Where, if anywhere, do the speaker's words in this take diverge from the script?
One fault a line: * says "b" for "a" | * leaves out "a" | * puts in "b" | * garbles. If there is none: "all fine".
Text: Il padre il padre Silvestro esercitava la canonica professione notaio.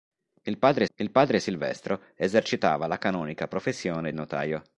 all fine